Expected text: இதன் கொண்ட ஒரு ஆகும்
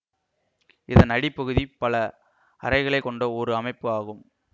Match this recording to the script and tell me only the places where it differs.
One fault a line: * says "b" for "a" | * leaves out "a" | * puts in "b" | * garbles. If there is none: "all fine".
* puts in "அடிப்பகுதி பல அறைகளை"
* puts in "அமைப்பு"